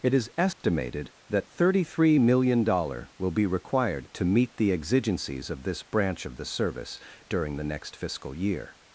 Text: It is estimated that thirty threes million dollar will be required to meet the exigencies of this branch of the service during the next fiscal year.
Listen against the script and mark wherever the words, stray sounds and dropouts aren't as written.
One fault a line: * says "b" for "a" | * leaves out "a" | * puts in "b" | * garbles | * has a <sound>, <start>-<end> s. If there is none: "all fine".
* has a dropout, 0.5-0.6 s
* says "three" for "threes"